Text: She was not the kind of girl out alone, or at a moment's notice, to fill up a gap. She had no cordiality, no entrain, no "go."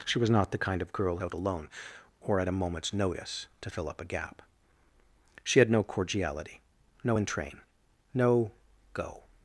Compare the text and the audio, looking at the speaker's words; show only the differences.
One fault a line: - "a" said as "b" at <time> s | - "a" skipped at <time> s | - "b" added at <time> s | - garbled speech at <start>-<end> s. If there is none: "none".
none